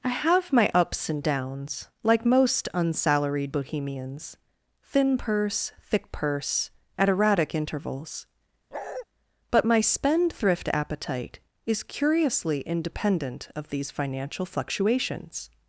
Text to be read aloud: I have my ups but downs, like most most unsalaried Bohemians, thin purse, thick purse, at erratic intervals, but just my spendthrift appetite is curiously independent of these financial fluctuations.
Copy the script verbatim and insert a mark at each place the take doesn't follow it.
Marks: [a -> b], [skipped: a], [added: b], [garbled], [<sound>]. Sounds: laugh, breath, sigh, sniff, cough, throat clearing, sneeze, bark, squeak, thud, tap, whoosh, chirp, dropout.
I have my ups [but -> and] downs, like most [skipped: most] unsalaried Bohemians, thin purse, thick purse, at erratic intervals, [bark] but [skipped: just] my spendthrift appetite is curiously independent of these financial fluctuations.